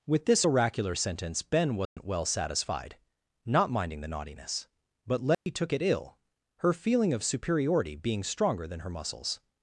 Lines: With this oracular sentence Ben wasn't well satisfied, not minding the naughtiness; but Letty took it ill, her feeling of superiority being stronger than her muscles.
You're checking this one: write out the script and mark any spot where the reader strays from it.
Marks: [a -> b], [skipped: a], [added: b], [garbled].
With this oracular sentence Ben wasn't well satisfied, not minding the naughtiness; but Letty took it ill, her feeling of superiority being stronger than her muscles.